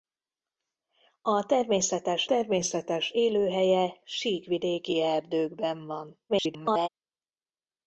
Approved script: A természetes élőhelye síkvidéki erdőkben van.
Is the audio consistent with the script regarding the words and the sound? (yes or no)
no